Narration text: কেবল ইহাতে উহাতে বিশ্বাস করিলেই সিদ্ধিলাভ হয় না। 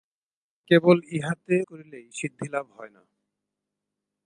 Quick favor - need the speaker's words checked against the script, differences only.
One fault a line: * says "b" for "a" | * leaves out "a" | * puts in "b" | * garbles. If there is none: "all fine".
* leaves out "উহাতে বিশ্বাস"